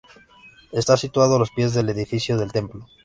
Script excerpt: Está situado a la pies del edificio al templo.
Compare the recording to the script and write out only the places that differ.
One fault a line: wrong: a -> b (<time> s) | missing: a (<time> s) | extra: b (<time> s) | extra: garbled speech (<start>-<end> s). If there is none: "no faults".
wrong: la -> los (1.4 s)
wrong: al -> del (2.4 s)